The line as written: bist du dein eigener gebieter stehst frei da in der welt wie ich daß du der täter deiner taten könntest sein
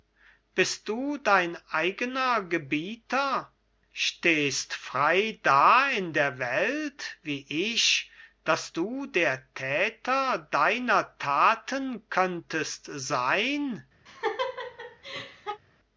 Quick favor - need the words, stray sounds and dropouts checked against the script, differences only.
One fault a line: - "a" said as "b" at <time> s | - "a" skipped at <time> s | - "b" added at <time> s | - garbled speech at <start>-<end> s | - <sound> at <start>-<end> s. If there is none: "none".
- laugh at 14.1-15.6 s